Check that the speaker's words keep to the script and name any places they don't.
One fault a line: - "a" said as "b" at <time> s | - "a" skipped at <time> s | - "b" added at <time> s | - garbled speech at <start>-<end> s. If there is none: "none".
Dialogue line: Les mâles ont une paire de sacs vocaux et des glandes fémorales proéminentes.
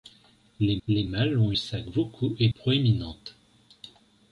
- "les" added at 0.9 s
- "une paire de" skipped at 1.5 s
- "des glandes fémorales" skipped at 2.5 s